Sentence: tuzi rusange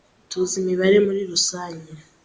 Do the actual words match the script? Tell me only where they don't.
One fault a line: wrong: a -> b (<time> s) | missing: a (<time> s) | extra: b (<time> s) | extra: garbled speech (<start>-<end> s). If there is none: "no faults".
extra: imibare muri (0.6 s)